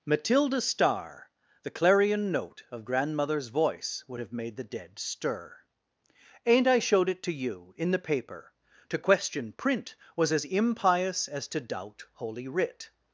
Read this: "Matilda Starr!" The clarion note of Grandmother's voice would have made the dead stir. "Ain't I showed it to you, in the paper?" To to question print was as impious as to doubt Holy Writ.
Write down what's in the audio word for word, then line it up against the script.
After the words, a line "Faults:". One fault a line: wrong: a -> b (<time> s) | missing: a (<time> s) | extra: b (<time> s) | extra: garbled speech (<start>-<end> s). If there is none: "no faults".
"Matilda Starr!" The clarion note of Grandmother's voice would have made the dead stir. "Ain't I showed it to you, in the paper?" To question print was as impious as to doubt Holy Writ.
Faults:
missing: to (9.0 s)